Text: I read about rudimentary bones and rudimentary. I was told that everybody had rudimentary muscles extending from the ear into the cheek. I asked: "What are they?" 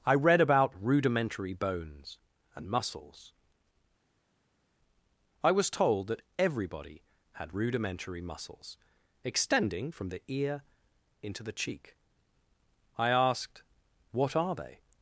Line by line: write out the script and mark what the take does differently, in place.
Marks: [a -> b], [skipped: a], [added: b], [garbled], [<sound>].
I read about rudimentary bones and [rudimentary. -> muscles] I was told that everybody had rudimentary muscles extending from the ear into the cheek. I asked: "What are they?"